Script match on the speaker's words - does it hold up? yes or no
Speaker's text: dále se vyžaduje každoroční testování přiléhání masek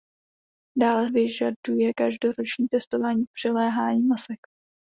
no